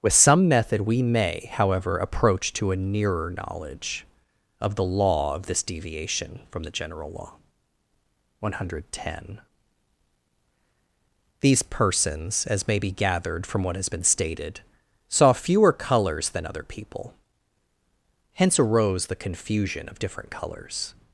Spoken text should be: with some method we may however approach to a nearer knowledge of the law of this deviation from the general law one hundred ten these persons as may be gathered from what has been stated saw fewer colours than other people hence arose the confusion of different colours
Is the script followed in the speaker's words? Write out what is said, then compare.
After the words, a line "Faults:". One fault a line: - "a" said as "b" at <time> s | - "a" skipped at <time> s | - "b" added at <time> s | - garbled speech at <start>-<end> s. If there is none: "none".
with some method we may however approach to a nearer knowledge of the law of this deviation from the general law one hundred ten these persons as may be gathered from what has been stated saw fewer colours than other people hence arose the confusion of different colours
Faults:
none